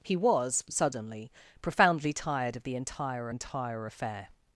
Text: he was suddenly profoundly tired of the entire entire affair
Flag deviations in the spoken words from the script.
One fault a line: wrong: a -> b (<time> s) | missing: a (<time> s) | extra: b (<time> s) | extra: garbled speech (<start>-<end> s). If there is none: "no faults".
no faults